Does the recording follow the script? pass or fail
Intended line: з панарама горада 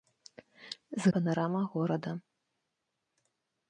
pass